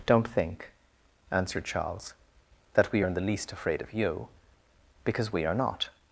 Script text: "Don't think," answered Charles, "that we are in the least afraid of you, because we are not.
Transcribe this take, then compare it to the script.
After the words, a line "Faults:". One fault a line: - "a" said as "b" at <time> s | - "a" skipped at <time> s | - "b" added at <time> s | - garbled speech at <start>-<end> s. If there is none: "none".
"Don't think," answered Charles, "that we are in the least afraid of you, because we are not.
Faults:
none